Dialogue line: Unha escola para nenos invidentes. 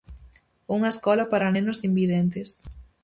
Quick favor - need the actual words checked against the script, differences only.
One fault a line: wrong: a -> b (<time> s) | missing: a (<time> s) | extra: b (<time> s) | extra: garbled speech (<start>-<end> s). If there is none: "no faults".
no faults